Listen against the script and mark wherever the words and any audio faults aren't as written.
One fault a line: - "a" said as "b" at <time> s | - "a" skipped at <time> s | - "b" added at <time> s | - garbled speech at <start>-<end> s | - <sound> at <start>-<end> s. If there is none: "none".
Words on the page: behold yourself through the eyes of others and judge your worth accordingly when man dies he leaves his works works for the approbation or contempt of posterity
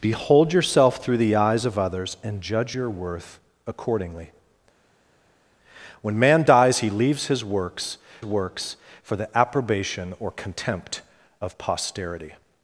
none